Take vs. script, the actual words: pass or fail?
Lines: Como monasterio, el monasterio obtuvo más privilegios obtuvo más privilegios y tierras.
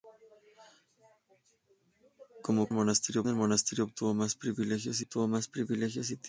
pass